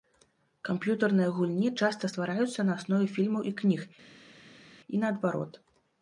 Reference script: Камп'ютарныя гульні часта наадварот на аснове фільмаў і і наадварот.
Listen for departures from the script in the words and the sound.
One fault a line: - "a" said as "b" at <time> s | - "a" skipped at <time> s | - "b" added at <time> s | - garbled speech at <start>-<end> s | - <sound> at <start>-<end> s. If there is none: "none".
- "наадварот" said as "ствараюцца" at 2.1 s
- "кніг" added at 3.6 s